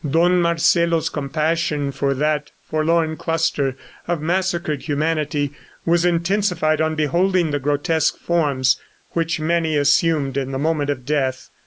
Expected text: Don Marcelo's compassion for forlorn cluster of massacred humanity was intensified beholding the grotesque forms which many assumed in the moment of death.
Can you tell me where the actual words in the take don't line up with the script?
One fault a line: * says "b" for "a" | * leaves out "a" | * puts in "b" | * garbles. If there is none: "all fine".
* puts in "that"
* puts in "on"